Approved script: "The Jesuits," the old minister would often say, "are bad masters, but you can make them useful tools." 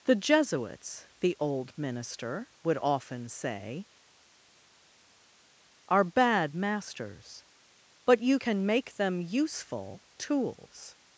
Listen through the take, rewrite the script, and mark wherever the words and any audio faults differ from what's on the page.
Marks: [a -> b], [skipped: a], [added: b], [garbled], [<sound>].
"The Jesuits," the old minister would often say, "are bad masters, but you can make them useful tools."